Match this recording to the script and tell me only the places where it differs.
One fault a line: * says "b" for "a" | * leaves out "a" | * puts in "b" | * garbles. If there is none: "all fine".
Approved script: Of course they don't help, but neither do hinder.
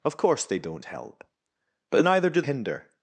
all fine